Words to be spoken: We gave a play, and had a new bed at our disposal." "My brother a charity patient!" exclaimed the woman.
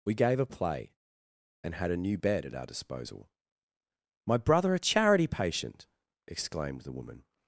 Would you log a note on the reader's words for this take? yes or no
no